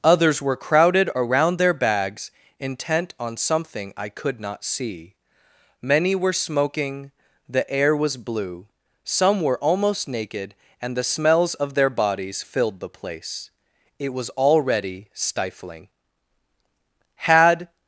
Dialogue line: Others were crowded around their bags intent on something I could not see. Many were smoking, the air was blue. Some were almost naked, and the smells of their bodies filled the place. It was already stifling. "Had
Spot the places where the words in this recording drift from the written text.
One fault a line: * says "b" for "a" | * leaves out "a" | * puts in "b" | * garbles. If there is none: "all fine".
all fine